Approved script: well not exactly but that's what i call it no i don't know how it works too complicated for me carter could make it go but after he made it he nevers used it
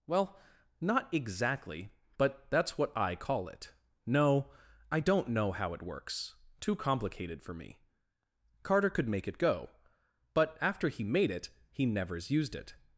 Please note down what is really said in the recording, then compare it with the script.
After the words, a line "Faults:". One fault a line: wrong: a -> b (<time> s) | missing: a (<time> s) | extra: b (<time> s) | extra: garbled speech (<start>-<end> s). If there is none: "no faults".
well not exactly but that's what i call it no i don't know how it works too complicated for me carter could make it go but after he made it he nevers used it
Faults:
no faults